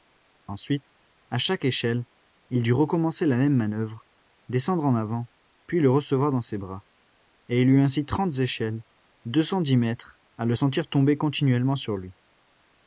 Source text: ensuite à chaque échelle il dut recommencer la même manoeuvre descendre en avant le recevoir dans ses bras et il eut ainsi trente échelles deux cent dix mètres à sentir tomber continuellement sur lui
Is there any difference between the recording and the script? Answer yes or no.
yes